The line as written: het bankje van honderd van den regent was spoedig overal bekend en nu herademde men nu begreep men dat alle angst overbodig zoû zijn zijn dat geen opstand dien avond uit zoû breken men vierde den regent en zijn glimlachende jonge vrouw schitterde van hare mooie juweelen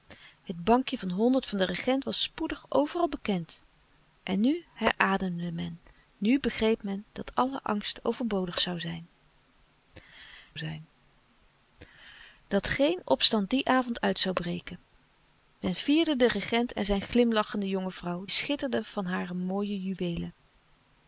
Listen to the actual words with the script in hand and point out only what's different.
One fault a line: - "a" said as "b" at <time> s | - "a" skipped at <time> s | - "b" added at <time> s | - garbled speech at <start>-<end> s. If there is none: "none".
none